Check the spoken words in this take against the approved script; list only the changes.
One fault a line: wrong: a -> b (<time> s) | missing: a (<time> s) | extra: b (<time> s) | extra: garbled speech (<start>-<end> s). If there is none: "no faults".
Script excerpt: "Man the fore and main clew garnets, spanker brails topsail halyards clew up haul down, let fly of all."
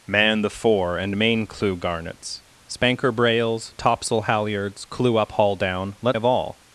missing: fly (6.2 s)